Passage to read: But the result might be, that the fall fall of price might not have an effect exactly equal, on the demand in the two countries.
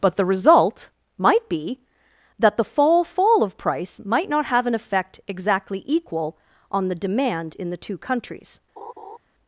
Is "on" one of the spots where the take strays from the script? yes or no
no